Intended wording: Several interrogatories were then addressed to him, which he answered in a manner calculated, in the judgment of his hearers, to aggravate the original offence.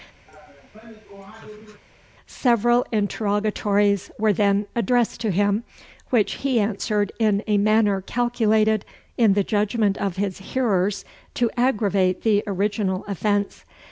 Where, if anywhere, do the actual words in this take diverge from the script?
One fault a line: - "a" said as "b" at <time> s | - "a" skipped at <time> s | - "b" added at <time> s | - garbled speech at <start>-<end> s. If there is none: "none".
none